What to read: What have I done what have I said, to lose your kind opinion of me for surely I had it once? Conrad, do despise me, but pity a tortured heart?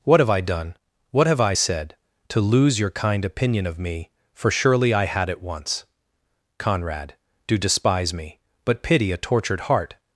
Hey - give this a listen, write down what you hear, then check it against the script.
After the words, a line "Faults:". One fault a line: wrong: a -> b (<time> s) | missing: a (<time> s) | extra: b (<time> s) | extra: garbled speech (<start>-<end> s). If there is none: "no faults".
What have I done what have I said, to lose your kind opinion of me for surely I had it once? Conrad, do despise me, but pity a tortured heart?
Faults:
no faults